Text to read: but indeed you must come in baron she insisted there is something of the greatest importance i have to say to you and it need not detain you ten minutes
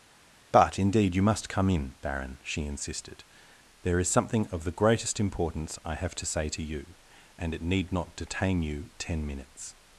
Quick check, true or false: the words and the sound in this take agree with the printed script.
true